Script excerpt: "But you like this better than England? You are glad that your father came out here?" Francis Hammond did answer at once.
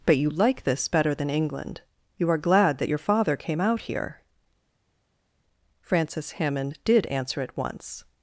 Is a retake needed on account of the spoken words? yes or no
no